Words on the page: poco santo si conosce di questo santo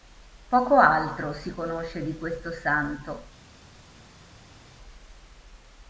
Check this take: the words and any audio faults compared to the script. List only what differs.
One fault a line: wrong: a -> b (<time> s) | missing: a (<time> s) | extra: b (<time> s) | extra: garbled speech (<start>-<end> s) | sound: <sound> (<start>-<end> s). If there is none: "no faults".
wrong: santo -> altro (0.8 s)